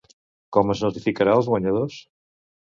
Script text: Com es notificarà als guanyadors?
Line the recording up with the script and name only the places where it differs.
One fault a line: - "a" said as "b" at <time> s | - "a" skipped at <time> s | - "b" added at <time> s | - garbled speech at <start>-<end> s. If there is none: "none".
none